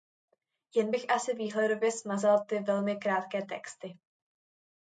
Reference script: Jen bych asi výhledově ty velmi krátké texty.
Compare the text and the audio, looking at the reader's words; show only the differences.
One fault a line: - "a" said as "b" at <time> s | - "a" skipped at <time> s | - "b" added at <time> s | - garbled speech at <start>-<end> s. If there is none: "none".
- "smazal" added at 1.9 s